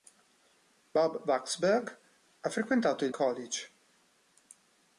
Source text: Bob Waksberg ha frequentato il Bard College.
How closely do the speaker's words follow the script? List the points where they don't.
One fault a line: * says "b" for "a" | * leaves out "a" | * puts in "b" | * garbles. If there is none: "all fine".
* leaves out "Bard"